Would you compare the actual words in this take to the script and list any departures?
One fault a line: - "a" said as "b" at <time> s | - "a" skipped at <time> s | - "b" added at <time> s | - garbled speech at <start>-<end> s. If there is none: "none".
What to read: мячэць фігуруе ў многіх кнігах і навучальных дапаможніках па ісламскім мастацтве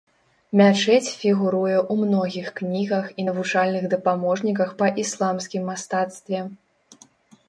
none